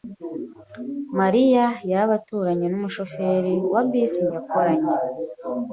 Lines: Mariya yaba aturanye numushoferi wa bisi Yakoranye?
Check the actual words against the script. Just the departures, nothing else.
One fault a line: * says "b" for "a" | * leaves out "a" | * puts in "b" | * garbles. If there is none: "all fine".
all fine